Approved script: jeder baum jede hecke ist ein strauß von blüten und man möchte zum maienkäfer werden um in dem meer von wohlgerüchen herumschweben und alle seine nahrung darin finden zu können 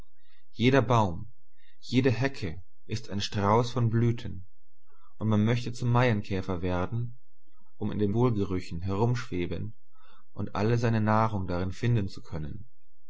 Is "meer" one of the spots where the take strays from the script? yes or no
yes